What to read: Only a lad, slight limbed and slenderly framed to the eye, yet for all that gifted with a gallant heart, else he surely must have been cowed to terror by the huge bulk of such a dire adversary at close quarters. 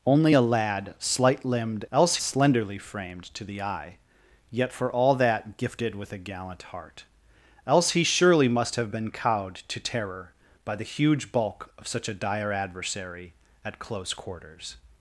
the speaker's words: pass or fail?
fail